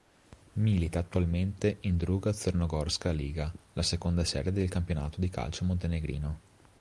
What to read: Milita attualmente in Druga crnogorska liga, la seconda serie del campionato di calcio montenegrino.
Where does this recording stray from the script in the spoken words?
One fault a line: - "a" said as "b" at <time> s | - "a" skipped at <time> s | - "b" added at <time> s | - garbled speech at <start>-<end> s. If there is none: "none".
none